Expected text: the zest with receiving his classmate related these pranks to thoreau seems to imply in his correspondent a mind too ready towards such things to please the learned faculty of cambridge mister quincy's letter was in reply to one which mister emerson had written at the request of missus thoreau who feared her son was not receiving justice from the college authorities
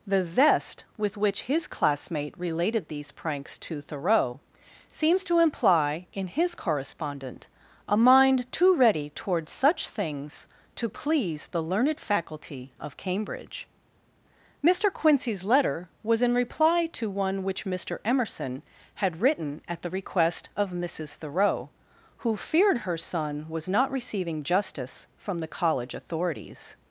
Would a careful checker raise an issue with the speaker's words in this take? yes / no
yes